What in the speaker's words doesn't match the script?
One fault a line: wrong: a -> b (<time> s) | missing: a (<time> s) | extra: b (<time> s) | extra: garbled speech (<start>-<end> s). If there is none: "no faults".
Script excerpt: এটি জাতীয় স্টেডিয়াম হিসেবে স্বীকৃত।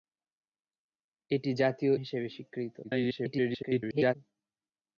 missing: স্টেডিয়াম (1.9 s)
extra: garbled speech (2.8-4.1 s)